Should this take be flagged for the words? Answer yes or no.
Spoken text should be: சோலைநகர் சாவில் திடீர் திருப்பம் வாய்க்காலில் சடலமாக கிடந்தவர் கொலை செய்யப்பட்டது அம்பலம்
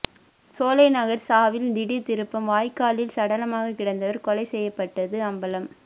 no